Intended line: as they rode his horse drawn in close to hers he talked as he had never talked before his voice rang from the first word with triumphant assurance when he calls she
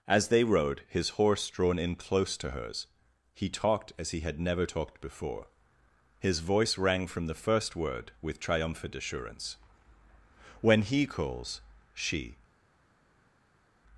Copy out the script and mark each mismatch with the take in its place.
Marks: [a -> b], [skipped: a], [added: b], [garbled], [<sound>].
as they rode his horse drawn in close to hers he talked as he had never talked before his voice rang from the first word with triumphant assurance when he calls she